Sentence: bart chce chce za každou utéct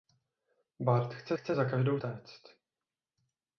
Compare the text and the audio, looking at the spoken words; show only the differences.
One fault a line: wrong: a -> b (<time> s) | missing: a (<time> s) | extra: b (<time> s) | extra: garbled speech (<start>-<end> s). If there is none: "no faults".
no faults